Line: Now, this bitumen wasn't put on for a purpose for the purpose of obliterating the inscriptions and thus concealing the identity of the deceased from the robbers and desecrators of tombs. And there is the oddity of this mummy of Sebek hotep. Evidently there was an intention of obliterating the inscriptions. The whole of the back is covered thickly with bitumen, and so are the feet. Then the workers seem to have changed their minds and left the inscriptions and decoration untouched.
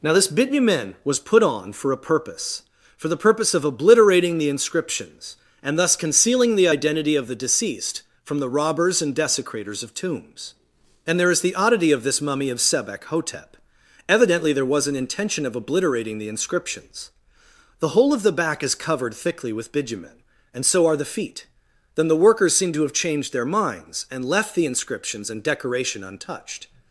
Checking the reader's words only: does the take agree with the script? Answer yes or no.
no